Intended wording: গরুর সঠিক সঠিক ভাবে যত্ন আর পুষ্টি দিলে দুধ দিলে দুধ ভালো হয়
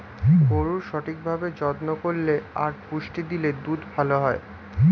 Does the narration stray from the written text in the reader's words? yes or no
yes